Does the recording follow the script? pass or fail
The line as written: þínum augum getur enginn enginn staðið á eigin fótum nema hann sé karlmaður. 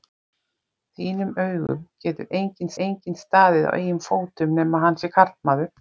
pass